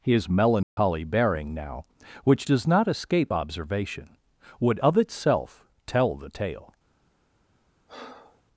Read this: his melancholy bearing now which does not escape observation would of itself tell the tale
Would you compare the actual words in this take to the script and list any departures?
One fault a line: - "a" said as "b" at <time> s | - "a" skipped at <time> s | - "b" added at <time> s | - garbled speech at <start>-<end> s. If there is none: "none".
none